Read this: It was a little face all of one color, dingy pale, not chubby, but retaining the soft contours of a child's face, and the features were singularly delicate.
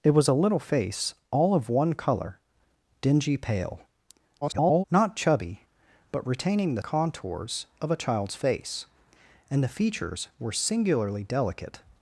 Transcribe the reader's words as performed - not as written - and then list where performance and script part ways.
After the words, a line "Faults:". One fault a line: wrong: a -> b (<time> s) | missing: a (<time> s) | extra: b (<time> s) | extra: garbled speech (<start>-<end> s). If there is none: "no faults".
It was a little face all of one color, dingy pale, [garbled] not chubby, but retaining the contours of a child's face, and the features were singularly delicate.
Faults:
extra: garbled speech (4.4-4.8 s)
missing: soft (6.8 s)